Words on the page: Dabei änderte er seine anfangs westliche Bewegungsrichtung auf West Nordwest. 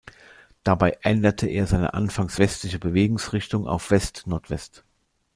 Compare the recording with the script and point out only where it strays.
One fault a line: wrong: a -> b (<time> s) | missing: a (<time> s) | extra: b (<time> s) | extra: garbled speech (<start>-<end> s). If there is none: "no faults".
no faults